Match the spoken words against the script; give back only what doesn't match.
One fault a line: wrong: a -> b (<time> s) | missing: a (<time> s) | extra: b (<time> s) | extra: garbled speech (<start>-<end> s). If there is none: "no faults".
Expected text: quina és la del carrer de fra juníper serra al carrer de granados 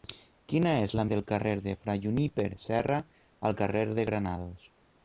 no faults